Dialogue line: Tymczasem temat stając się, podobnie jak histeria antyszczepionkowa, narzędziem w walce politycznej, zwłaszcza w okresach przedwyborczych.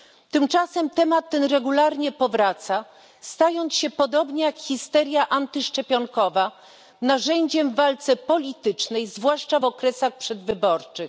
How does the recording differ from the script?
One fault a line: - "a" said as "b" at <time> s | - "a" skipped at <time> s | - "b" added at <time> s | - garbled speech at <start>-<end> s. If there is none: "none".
- "ten regularnie powraca" added at 1.3 s